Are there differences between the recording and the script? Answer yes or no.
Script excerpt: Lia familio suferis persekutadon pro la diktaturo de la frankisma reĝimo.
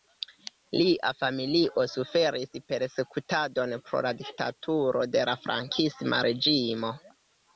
no